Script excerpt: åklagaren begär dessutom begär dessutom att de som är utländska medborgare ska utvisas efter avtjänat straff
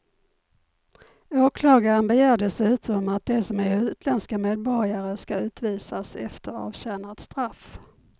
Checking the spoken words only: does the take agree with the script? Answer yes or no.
no